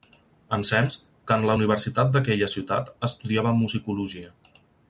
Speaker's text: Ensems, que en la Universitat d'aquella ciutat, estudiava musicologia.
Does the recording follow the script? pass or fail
pass